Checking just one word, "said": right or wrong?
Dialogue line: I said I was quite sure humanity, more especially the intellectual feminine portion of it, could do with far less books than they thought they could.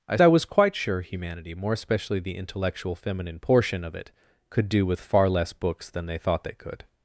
wrong